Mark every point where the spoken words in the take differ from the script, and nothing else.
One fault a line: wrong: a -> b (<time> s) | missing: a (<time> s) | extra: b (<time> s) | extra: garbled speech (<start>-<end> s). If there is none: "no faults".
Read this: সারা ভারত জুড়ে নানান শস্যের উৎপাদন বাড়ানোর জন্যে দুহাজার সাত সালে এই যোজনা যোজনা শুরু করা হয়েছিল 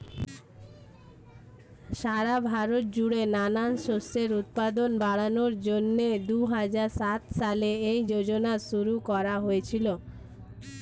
missing: যোজনা (8.5 s)